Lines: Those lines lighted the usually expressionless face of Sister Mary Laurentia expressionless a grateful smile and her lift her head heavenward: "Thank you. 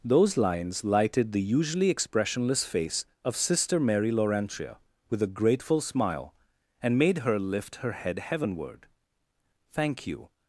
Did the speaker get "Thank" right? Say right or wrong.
right